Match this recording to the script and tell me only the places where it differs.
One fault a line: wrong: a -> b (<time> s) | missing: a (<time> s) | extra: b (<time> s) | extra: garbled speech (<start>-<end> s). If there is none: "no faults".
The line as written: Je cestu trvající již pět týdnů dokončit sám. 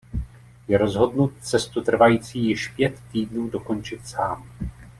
extra: rozhodnut (0.8 s)